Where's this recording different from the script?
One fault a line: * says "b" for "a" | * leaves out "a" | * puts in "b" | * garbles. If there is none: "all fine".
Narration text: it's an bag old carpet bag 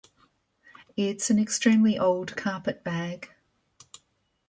* says "extremely" for "bag"